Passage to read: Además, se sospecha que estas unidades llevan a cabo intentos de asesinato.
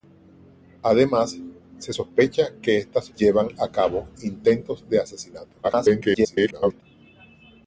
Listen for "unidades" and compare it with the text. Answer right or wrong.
wrong